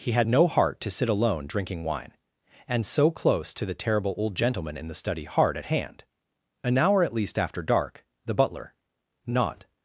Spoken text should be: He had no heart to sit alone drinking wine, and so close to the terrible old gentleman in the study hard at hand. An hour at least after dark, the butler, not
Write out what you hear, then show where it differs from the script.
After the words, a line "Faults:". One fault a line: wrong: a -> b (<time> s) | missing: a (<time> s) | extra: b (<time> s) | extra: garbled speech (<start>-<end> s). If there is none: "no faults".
He had no heart to sit alone drinking wine, and so close to the terrible old gentleman in the study hard at hand. An hour at least after dark, the butler, not
Faults:
no faults